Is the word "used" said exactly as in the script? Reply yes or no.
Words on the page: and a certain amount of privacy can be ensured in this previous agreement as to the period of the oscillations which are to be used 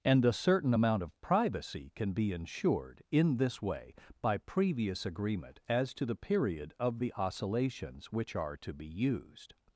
yes